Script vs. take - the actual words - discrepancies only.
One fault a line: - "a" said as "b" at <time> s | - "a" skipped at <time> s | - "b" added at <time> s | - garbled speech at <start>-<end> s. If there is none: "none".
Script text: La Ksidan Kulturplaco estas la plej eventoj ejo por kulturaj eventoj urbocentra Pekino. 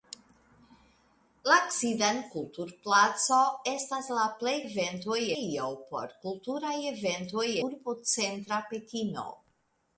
none